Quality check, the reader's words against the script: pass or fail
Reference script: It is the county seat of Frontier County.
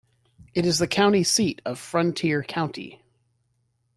pass